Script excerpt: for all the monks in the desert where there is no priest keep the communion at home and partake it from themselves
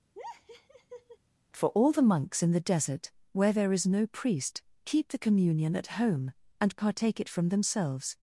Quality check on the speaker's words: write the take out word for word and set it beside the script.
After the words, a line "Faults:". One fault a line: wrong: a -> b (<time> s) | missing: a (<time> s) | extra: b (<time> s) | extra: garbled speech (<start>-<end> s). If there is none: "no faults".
for all the monks in the desert where there is no priest keep the communion at home and partake it from themselves
Faults:
no faults